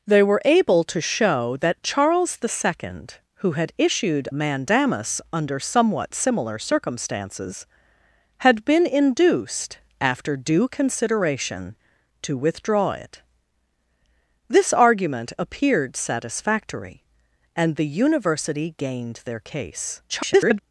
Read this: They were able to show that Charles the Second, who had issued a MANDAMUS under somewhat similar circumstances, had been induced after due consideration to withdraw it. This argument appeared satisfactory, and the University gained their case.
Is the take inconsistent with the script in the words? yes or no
yes